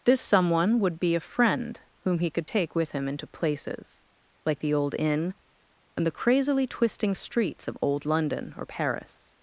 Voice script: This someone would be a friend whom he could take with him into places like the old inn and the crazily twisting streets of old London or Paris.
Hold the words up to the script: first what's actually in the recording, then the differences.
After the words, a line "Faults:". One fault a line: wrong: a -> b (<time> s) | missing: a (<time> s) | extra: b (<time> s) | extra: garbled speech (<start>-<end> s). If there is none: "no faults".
This someone would be a friend whom he could take with him into places like the old inn and the crazily twisting streets of old London or Paris.
Faults:
no faults